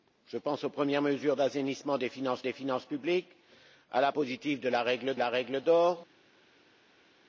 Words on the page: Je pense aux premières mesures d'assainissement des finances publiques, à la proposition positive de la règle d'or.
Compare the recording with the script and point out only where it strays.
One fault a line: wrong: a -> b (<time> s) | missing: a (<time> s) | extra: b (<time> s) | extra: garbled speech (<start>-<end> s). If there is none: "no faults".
extra: des finances (2.4 s)
missing: proposition (4.1 s)
extra: la règle (5.1 s)